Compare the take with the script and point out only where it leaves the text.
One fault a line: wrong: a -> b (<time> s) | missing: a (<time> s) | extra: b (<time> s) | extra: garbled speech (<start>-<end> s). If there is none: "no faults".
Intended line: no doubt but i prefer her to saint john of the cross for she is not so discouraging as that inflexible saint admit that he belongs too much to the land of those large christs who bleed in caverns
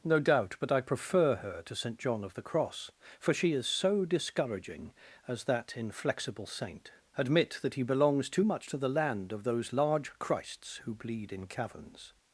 missing: not (3.7 s)